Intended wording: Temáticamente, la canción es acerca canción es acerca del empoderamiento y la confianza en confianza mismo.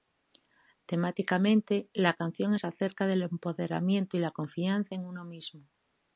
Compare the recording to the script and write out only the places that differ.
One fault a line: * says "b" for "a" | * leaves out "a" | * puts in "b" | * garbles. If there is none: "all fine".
* leaves out "canción es acerca"
* says "uno" for "confianza"